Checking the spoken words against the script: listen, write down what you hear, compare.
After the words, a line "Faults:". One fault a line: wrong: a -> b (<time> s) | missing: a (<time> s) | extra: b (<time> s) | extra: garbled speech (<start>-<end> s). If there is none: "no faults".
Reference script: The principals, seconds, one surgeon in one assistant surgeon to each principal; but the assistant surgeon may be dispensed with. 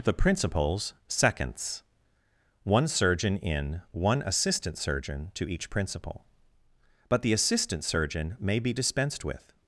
The principals, seconds, one surgeon in one assistant surgeon to each principal; but the assistant surgeon may be dispensed with.
Faults:
no faults